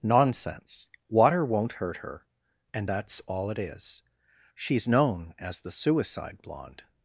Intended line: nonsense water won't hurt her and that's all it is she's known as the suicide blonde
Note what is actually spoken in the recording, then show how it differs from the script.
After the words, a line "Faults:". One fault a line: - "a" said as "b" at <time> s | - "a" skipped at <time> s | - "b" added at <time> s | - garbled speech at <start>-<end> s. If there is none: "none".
nonsense water won't hurt her and that's all it is she's known as the suicide blonde
Faults:
none